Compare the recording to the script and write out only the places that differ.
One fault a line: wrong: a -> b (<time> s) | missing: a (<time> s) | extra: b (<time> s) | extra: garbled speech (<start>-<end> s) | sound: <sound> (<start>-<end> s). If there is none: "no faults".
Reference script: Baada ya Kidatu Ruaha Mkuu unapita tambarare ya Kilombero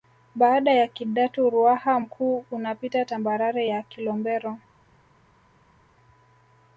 no faults